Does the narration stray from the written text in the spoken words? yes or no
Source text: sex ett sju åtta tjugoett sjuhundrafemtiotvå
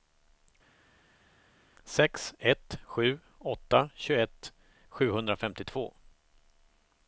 no